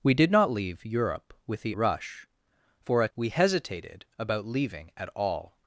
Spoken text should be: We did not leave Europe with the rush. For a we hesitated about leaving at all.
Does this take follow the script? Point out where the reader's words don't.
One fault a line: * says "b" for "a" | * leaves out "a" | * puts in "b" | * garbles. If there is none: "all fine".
all fine